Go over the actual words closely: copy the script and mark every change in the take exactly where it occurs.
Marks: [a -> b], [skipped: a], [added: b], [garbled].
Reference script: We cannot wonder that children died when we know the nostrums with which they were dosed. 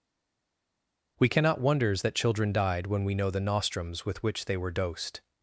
We cannot [wonder -> wonders] that children died when we know the nostrums with which they were dosed.